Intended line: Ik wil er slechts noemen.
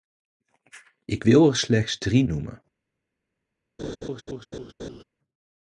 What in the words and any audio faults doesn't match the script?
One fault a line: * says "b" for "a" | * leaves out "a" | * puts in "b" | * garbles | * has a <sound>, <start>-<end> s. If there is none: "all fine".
* puts in "drie"
* has a laugh, 3.8-5.0 s